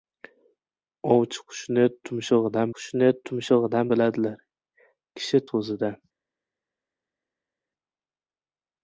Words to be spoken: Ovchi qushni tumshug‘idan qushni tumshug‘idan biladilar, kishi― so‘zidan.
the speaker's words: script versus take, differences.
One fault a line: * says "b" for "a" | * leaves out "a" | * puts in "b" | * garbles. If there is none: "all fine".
all fine